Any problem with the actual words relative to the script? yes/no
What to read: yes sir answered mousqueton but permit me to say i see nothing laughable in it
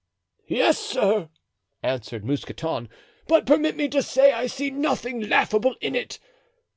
no